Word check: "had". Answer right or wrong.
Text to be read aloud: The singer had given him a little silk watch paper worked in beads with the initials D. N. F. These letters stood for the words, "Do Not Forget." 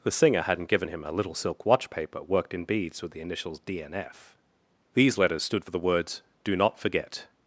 wrong